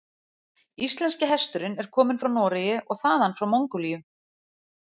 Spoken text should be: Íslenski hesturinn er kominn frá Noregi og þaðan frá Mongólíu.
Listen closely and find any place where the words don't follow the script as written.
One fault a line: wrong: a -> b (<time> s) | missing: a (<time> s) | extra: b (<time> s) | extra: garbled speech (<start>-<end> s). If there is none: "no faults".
no faults